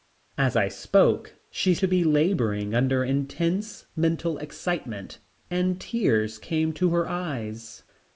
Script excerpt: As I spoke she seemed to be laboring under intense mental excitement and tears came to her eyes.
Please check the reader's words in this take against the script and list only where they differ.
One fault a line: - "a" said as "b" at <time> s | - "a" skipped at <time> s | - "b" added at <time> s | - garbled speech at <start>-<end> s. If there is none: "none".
- "seemed" skipped at 1.8 s